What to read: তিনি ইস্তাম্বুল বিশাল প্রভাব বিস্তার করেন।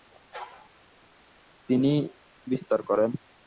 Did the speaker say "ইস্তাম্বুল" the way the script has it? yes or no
no